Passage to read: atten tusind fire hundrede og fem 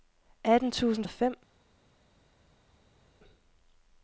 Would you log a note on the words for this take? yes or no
yes